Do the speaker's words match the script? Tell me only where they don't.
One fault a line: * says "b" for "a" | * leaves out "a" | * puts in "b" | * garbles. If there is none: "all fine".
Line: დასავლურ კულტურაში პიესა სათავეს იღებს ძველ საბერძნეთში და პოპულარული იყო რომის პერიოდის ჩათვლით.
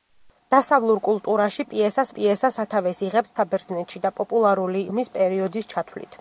* puts in "პიესა"
* leaves out "ძველ"
* leaves out "იყო"